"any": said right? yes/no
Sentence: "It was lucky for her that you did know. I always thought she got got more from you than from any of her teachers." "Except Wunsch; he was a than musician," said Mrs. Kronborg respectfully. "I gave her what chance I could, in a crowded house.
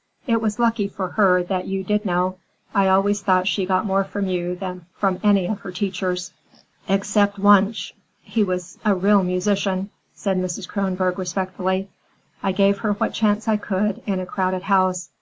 yes